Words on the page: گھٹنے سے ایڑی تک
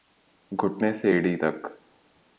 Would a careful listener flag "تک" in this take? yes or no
no